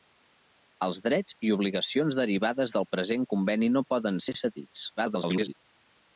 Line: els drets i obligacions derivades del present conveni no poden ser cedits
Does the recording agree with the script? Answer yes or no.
no